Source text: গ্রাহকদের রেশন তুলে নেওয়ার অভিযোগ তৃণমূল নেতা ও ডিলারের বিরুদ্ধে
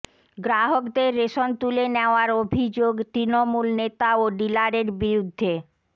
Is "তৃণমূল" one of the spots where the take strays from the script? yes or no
no